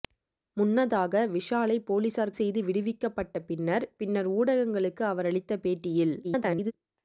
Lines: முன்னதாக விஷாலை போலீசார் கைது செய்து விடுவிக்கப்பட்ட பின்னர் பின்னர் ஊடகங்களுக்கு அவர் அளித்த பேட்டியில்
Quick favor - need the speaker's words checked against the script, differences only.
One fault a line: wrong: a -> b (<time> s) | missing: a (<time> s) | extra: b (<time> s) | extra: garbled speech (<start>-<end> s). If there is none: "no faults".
missing: கைது (2.3 s)
extra: garbled speech (6.2-6.7 s)